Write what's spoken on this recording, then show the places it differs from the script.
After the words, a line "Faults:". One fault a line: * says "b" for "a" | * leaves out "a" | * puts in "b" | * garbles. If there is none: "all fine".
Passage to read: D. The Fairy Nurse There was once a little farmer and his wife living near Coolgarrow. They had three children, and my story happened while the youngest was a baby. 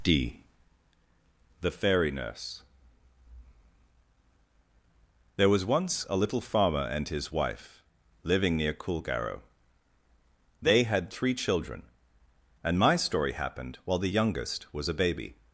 D. The Fairy Nurse There was once a little farmer and his wife living near Coolgarrow. They had three children, and my story happened while the youngest was a baby.
Faults:
all fine